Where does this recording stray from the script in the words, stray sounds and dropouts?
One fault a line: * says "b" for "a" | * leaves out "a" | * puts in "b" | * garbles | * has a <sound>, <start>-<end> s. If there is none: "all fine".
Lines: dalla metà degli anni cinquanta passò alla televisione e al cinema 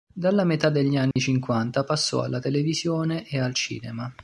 * has a dropout, 1.1-1.2 s